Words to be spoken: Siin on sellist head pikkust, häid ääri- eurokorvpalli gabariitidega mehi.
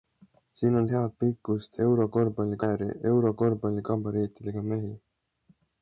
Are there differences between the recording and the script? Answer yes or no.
yes